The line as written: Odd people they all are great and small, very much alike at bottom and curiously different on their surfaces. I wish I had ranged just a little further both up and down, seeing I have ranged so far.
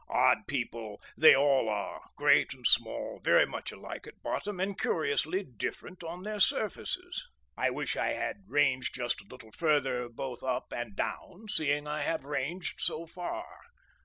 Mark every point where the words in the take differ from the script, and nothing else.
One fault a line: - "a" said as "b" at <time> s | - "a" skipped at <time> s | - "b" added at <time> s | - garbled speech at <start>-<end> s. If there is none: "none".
none